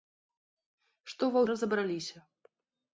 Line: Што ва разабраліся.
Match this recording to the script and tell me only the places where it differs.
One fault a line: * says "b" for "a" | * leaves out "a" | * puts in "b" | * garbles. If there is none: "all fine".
all fine